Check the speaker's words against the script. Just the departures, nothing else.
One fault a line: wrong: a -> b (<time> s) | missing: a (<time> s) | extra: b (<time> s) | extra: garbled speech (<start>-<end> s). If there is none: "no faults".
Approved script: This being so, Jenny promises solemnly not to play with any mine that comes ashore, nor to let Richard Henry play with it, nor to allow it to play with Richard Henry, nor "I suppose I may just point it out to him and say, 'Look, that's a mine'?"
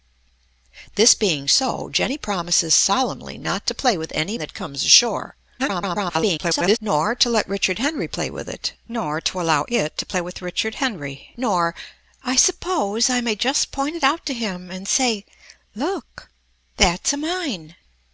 missing: mine (4.4 s)
extra: garbled speech (5.6-6.8 s)